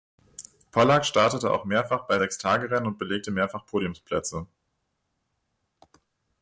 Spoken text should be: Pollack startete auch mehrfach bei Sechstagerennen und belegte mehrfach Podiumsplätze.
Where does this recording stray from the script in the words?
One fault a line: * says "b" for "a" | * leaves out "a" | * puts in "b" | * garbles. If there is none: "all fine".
all fine